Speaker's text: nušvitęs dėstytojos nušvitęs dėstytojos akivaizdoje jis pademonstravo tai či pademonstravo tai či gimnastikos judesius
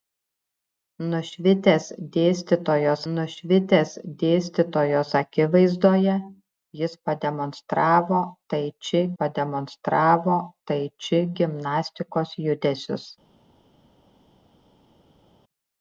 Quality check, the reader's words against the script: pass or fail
pass